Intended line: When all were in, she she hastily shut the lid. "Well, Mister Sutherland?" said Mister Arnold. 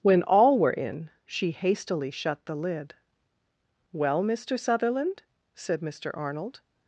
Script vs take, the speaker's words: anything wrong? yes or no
yes